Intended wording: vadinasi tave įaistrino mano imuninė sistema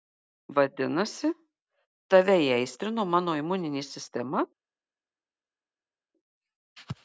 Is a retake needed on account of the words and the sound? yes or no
no